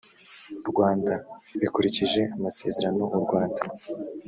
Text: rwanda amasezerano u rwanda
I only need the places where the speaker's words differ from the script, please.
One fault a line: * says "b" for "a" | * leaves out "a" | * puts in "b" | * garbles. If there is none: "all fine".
* puts in "bikurikije"